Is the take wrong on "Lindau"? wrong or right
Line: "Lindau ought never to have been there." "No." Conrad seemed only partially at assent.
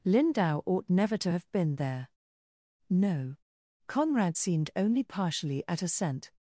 right